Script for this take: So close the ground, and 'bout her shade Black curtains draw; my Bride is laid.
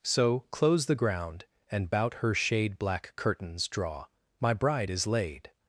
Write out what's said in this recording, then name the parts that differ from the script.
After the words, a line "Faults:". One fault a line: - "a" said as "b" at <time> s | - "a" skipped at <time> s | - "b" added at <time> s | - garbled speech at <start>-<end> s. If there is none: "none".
So close the ground, and 'bout her shade Black curtains draw; my Bride is laid.
Faults:
none